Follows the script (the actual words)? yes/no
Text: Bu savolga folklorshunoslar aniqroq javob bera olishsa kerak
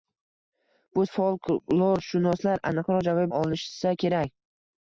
no